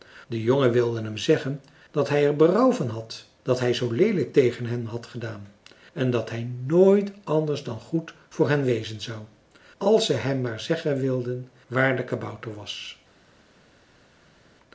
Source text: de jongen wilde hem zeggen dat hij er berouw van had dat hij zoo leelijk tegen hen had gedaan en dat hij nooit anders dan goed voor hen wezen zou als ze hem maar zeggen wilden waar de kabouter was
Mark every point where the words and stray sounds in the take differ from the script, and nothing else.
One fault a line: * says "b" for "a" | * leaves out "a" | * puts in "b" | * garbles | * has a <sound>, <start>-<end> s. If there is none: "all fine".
all fine